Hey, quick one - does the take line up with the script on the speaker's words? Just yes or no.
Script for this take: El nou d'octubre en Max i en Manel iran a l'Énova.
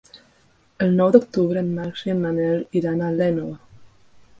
yes